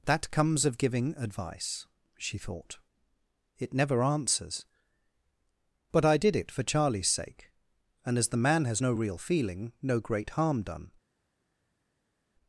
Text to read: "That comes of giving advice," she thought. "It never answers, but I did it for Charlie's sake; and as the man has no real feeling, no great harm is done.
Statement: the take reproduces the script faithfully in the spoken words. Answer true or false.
false